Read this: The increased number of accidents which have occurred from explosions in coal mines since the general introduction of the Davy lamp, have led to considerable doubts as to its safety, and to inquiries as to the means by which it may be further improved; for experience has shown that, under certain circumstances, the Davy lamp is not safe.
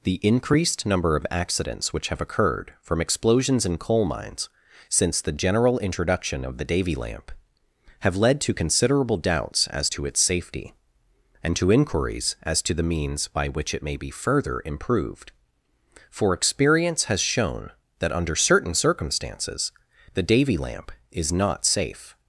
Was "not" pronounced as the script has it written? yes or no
yes